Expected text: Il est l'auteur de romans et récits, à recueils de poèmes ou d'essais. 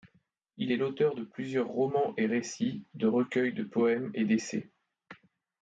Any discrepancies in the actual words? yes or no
yes